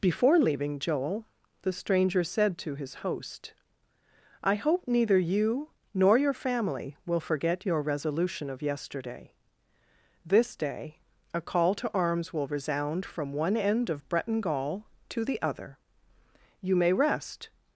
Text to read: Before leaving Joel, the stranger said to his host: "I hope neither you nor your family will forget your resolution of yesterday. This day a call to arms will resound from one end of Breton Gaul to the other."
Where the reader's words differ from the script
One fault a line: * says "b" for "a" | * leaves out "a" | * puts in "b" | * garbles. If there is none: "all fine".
* puts in "You may rest"